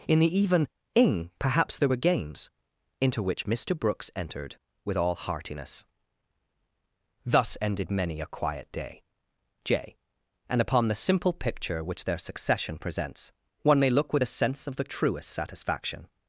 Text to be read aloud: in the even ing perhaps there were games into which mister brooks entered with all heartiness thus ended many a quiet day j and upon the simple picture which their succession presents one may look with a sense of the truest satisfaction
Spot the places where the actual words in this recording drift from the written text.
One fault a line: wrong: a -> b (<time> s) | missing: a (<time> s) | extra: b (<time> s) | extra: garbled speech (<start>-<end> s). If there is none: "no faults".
no faults